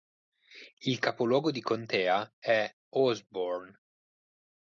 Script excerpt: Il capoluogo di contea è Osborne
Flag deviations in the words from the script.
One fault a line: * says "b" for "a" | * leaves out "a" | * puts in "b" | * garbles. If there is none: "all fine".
all fine